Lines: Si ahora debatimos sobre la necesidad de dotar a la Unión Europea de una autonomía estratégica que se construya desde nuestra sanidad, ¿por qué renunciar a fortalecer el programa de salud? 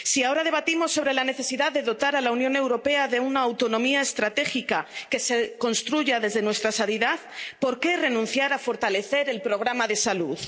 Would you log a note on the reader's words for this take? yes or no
no